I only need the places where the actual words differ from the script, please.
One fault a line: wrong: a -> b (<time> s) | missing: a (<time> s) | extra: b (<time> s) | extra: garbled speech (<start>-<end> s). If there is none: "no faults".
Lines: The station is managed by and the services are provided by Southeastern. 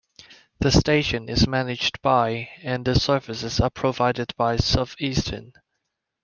no faults